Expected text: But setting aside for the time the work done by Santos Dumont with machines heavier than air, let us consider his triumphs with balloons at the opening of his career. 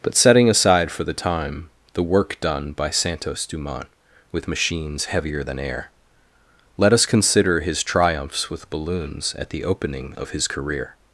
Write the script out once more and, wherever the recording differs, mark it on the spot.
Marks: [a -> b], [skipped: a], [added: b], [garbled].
But setting aside for the time the work done by Santos Dumont with machines heavier than air, let us consider his triumphs with balloons at the opening of his career.